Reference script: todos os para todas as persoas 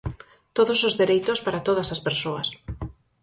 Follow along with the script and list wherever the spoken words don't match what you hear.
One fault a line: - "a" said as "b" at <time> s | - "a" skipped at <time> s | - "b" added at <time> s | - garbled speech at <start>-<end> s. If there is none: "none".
- "dereitos" added at 1.0 s